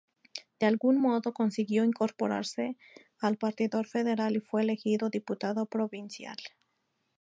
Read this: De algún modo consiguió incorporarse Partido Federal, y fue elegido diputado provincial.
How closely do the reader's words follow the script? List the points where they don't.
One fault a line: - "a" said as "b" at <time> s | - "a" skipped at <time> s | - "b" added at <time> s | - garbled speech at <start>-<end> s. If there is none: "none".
- "al" added at 3.2 s